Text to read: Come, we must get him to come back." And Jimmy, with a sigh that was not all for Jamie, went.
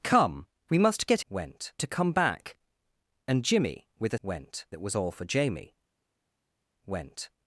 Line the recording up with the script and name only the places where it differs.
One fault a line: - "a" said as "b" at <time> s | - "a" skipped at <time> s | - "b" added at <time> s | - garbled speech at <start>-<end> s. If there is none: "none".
- "him" said as "went" at 1.3 s
- "sigh" said as "went" at 4.2 s
- "not" skipped at 5.0 s